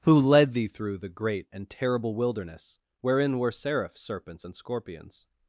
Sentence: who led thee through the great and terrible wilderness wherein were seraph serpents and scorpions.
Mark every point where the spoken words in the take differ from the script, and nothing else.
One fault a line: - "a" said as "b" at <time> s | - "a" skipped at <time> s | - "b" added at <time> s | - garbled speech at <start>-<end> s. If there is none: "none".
none